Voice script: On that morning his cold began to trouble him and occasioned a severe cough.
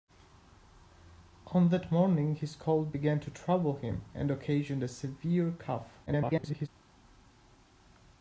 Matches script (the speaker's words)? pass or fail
fail